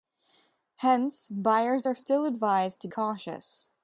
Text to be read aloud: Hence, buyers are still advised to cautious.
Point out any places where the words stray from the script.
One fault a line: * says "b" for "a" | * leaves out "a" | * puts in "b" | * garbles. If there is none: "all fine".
all fine